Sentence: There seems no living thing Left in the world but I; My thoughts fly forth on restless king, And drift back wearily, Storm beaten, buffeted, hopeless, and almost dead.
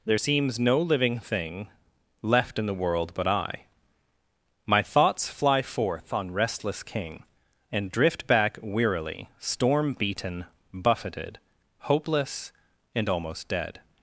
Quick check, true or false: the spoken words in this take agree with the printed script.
true